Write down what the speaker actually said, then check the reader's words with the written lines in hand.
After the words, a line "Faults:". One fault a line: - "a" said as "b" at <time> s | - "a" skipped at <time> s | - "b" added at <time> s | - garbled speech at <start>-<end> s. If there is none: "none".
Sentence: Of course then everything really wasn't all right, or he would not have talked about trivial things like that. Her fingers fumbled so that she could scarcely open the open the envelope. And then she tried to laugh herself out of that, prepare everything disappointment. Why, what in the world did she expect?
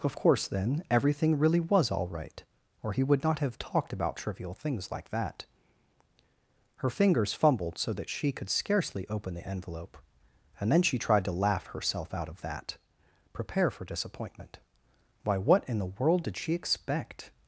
Of course then everything really was all right, or he would not have talked about trivial things like that. Her fingers fumbled so that she could scarcely open the envelope. And then she tried to laugh herself out of that, prepare for disappointment. Why, what in the world did she expect?
Faults:
- "wasn't" said as "was" at 1.6 s
- "open the" skipped at 9.5 s
- "everything" said as "for" at 13.7 s